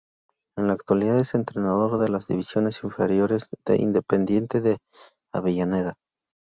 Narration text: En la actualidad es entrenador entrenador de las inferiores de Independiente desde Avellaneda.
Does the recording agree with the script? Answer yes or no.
no